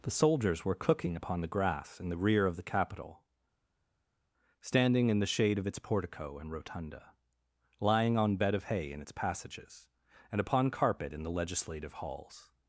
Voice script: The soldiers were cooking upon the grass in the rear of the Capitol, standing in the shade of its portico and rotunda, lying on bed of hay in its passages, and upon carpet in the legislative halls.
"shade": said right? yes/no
yes